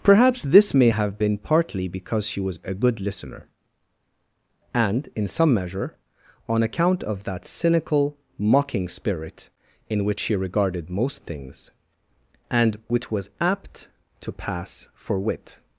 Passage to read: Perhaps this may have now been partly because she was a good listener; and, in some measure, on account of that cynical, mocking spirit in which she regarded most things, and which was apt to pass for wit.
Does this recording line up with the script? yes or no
no